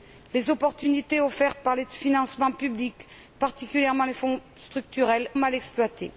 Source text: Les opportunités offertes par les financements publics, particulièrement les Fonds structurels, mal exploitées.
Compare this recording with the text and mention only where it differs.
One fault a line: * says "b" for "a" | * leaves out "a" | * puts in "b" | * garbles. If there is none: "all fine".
all fine